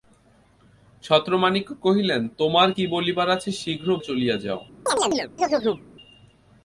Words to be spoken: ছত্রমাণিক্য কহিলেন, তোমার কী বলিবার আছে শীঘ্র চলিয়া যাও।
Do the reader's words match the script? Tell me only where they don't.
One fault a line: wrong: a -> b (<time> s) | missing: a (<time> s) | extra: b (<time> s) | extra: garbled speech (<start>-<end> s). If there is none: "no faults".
no faults